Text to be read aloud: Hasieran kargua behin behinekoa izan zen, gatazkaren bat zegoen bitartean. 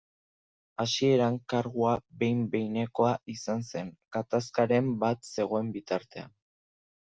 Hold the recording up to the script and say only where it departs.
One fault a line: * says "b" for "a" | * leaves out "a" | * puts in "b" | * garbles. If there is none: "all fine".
all fine